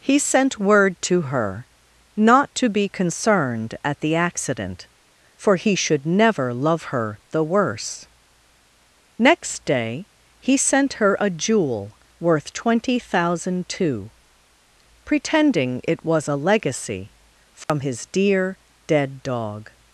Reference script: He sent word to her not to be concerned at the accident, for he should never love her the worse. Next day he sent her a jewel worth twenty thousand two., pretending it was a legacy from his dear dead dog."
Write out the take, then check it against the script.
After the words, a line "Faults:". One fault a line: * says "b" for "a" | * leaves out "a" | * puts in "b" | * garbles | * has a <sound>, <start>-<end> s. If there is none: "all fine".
He sent word to her not to be concerned at the accident, for he should never love her the worse. Next day he sent her a jewel worth twenty thousand two., pretending it was a legacy from his dear dead dog."
Faults:
* has a dropout, 17.6-17.7 s